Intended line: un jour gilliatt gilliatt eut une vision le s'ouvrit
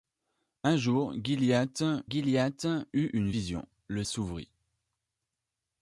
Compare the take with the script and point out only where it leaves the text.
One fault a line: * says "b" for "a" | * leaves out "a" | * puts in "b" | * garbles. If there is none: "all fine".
all fine